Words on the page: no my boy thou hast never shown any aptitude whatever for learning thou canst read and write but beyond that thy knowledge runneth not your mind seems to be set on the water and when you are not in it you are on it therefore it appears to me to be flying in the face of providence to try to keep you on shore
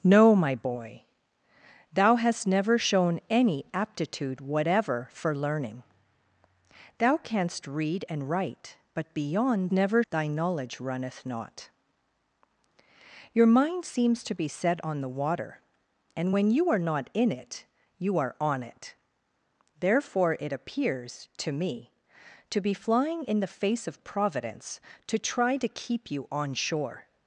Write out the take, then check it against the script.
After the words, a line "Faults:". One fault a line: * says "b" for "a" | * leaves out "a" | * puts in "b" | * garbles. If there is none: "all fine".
no my boy thou hast never shown any aptitude whatever for learning thou canst read and write but beyond never thy knowledge runneth not your mind seems to be set on the water and when you are not in it you are on it therefore it appears to me to be flying in the face of providence to try to keep you on shore
Faults:
* says "never" for "that"